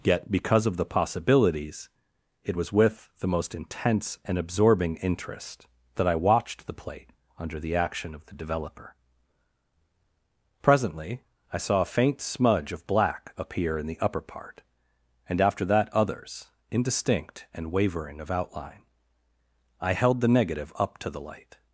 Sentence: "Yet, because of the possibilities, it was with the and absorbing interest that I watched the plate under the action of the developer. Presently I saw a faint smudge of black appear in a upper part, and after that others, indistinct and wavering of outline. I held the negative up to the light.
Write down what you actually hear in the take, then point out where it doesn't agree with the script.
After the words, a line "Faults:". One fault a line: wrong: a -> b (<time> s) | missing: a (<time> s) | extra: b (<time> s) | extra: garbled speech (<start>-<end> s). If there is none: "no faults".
"Yet, because of the possibilities, it was with the most intense and absorbing interest that I watched the plate under the action of the developer. Presently I saw a faint smudge of black appear in the upper part, and after that others, indistinct and wavering of outline. I held the negative up to the light.
Faults:
extra: most intense (3.3 s)
wrong: a -> the (13.9 s)